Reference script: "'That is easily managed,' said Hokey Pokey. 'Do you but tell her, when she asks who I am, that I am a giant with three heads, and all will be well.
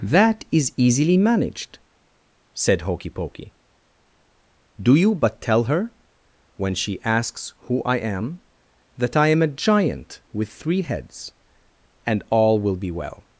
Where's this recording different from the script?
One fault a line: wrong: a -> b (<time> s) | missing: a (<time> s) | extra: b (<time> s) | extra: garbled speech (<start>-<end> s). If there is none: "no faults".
no faults